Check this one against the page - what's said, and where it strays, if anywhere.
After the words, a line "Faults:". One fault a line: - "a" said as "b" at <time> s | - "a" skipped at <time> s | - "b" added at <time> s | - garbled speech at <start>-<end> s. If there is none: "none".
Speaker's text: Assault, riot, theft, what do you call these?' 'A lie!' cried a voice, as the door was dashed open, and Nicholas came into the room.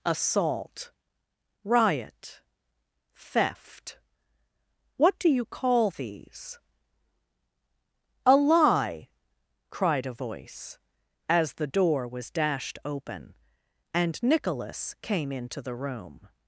Assault, riot, theft, what do you call these?' 'A lie!' cried a voice, as the door was dashed open, and Nicholas came into the room.
Faults:
none